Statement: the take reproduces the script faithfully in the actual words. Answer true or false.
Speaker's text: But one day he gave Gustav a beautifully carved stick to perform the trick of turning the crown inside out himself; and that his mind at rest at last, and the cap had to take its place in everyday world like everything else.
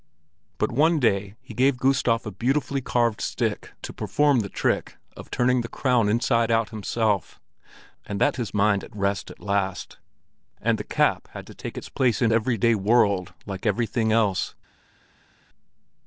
true